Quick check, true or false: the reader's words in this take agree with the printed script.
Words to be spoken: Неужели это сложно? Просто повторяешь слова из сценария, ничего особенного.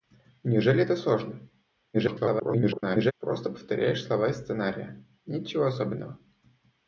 false